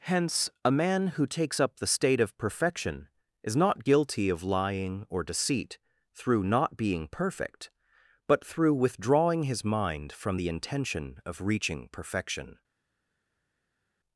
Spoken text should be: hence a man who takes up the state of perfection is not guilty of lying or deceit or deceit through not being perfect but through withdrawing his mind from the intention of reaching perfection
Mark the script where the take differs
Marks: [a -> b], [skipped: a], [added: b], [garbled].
hence a man who takes up the state of perfection is not guilty of lying or deceit [skipped: or deceit] through not being perfect but through withdrawing his mind from the intention of reaching perfection